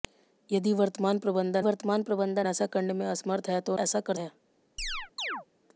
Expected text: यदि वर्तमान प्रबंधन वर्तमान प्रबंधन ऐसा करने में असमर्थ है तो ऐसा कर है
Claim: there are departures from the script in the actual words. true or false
false